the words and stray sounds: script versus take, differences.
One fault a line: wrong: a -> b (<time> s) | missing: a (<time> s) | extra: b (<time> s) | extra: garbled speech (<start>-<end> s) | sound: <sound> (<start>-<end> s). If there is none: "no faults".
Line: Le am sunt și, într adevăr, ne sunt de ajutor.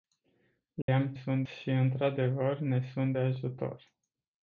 sound: dropout (0.8-0.9 s)